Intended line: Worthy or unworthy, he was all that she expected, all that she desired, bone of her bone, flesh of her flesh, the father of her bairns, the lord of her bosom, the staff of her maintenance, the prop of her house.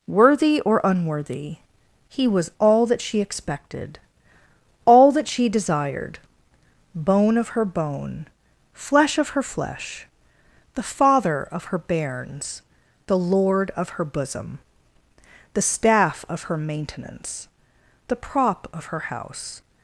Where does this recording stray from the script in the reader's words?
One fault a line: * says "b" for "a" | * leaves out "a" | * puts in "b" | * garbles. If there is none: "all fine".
all fine